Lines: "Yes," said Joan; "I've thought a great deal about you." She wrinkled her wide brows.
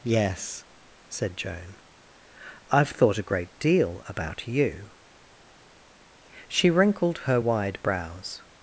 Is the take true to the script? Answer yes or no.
yes